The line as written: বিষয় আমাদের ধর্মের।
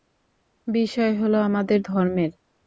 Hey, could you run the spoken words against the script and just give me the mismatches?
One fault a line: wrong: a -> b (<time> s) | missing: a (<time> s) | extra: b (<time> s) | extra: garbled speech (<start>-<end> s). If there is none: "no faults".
extra: হলো (1.1 s)